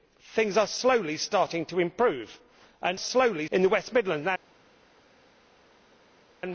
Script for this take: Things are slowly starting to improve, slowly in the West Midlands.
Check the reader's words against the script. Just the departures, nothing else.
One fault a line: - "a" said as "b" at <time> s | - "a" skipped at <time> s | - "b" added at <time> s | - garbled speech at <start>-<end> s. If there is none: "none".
none